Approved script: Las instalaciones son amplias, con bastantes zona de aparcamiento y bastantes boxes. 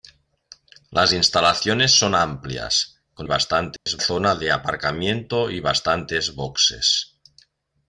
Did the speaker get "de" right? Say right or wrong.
right